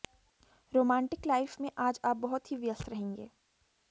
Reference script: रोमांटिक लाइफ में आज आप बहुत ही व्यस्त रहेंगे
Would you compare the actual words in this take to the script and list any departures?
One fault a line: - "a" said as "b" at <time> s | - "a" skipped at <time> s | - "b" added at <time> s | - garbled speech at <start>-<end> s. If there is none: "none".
none